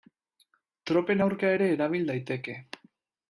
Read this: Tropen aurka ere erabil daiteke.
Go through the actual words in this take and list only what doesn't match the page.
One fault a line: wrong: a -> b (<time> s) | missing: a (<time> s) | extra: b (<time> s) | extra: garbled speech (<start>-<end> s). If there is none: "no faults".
no faults